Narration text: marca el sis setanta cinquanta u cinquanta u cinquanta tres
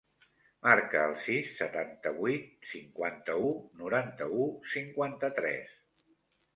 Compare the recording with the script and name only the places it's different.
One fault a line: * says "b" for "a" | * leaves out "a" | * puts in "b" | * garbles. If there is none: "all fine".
* puts in "vuit"
* says "noranta" for "cinquanta"